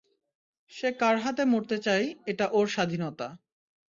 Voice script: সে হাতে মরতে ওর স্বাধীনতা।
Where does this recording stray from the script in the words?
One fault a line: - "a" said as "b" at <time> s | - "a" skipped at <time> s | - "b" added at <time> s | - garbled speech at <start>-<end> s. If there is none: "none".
- "কার" added at 1.0 s
- "চায় এটা" added at 1.9 s